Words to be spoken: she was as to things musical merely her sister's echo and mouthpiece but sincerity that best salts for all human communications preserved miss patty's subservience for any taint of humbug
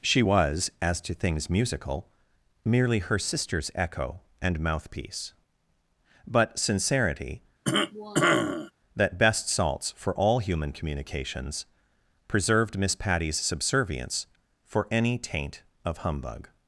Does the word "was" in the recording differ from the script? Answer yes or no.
no